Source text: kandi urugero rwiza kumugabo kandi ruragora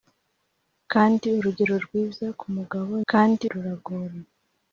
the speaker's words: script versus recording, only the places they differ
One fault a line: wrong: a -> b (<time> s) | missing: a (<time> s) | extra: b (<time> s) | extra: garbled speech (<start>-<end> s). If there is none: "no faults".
no faults